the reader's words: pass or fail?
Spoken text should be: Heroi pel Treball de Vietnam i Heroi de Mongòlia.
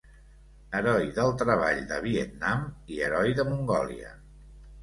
fail